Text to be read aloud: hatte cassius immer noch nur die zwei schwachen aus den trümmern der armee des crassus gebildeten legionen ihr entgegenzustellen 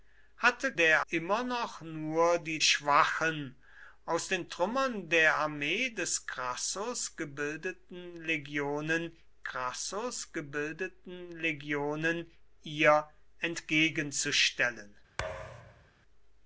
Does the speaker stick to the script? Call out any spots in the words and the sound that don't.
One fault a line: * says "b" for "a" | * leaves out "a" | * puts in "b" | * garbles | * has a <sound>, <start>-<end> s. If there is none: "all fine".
* says "der" for "cassius"
* leaves out "zwei"
* puts in "crassus gebildeten legionen"
* has a thud, 15.2-15.9 s